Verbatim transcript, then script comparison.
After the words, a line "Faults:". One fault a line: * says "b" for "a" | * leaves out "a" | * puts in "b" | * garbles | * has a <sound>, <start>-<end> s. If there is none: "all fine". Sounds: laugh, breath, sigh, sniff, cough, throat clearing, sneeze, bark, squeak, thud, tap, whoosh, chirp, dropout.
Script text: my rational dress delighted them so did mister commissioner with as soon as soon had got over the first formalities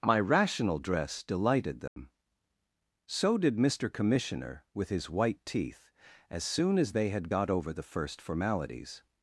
my rational dress delighted them so did mister commissioner with his white teeth as soon as they had got over the first formalities
Faults:
* has a dropout, 1.9-2.0 s
* puts in "his white teeth"
* says "they" for "soon"